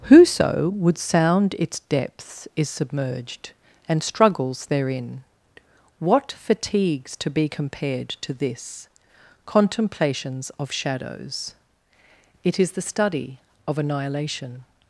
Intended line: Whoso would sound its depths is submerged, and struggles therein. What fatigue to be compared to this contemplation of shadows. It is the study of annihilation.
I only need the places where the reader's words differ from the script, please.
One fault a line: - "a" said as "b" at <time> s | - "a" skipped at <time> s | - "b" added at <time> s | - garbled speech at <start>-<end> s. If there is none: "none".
- "fatigue" said as "fatigues" at 6.3 s
- "contemplation" said as "contemplations" at 9.5 s